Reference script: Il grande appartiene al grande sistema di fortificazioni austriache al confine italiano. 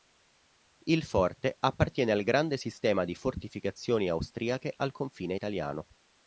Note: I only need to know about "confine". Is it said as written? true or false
true